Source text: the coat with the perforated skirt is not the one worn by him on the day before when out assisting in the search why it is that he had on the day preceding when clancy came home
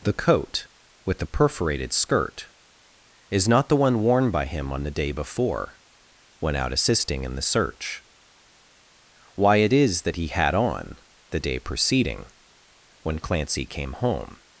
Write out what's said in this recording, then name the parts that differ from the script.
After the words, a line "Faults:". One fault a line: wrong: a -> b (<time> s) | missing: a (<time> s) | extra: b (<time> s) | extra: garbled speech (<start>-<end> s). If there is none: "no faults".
the coat with the perforated skirt is not the one worn by him on the day before when out assisting in the search why it is that he had on the day preceding when clancy came home
Faults:
no faults